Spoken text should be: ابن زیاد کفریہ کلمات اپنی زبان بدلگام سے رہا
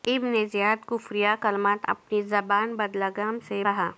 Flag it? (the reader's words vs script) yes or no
no